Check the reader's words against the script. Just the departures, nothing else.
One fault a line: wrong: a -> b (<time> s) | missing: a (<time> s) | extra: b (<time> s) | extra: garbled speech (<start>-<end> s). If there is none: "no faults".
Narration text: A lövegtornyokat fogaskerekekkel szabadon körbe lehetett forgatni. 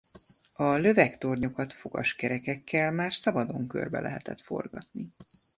extra: már (2.9 s)